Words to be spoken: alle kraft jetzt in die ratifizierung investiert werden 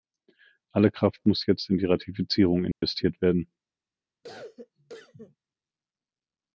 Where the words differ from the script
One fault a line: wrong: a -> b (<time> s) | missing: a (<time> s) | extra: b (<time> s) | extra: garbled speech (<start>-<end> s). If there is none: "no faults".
extra: muss (1.3 s)